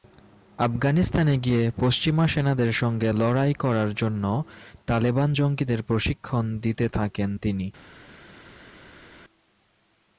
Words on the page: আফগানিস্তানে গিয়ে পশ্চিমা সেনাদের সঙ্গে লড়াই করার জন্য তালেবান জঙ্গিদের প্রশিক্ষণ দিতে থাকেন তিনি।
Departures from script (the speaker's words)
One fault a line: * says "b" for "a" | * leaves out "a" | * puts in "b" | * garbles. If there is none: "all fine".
all fine